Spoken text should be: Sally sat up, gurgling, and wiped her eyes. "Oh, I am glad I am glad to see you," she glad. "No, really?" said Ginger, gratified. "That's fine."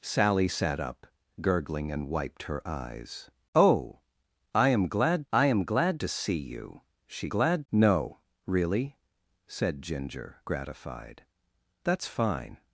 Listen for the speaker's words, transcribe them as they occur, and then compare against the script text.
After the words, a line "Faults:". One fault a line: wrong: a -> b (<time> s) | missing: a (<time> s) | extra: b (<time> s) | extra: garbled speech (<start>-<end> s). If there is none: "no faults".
Sally sat up, gurgling, and wiped her eyes. "Oh, I am glad I am glad to see you," she glad. "No, really?" said Ginger, gratified. "That's fine."
Faults:
no faults